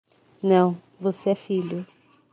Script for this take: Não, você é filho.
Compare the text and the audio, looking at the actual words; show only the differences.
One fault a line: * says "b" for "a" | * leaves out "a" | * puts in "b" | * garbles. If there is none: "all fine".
all fine